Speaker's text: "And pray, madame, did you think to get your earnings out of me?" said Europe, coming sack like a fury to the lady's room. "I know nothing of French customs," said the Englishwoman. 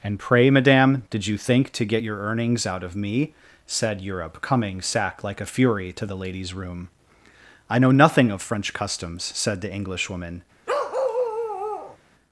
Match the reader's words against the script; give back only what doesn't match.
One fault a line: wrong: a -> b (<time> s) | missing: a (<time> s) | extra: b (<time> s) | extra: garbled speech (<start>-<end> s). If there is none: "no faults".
no faults